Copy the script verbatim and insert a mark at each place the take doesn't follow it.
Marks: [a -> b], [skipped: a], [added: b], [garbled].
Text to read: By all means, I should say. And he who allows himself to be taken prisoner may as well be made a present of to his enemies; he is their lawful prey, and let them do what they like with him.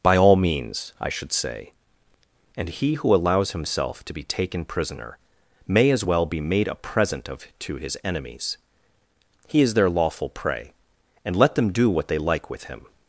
By all means, I should say. And he who allows himself to be taken prisoner may as well be made a present of to his enemies; he is their lawful prey, and let them do what they like with him.